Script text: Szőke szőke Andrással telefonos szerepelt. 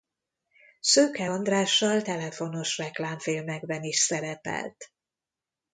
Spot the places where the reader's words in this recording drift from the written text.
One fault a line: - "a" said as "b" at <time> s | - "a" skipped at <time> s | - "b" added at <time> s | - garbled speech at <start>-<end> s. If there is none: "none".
- "szőke" skipped at 1.3 s
- "reklámfilmekben is" added at 2.8 s